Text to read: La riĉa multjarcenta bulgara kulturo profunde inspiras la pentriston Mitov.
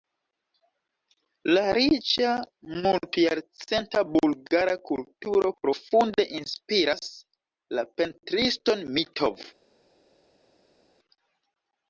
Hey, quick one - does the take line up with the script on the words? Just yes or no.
yes